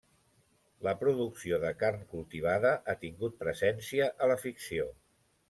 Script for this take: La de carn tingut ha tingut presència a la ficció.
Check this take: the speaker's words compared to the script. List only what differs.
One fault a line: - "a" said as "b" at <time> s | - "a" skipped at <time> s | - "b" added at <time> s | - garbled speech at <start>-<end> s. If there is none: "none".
- "producció" added at 1.0 s
- "tingut" said as "cultivada" at 2.1 s